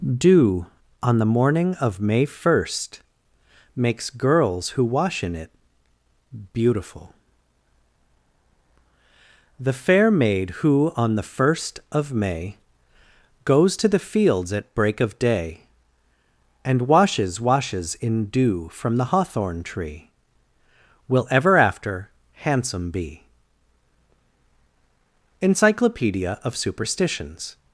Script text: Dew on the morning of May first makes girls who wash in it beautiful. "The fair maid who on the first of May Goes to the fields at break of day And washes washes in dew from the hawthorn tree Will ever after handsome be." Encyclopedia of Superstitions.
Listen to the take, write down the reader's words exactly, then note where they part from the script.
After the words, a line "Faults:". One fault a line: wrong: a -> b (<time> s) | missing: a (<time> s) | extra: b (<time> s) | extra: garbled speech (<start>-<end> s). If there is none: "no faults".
Dew on the morning of May first makes girls who wash in it beautiful. "The fair maid who on the first of May Goes to the fields at break of day And washes washes in dew from the hawthorn tree Will ever after handsome be." Encyclopedia of Superstitions.
Faults:
no faults